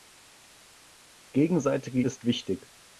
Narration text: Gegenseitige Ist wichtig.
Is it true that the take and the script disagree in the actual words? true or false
false